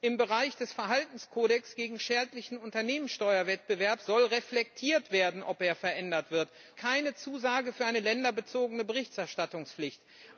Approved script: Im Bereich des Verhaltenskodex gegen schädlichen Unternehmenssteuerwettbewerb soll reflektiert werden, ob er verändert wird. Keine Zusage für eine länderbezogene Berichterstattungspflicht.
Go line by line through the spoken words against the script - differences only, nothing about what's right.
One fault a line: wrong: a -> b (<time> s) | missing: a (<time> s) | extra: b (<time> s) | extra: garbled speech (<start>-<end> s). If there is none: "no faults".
no faults